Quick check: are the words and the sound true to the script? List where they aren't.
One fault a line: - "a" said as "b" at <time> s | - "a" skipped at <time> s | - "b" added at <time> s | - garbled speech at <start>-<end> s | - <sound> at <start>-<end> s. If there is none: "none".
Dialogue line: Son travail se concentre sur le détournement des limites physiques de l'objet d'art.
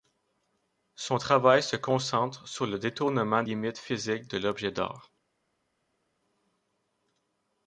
- "des" skipped at 3.4 s